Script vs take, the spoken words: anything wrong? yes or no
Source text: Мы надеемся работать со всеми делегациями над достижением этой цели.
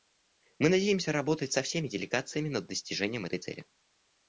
no